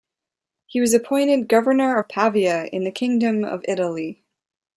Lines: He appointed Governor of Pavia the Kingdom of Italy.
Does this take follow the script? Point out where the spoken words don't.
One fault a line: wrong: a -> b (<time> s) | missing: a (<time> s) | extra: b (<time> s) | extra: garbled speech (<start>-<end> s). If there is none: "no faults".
extra: was (0.8 s)
extra: in (2.7 s)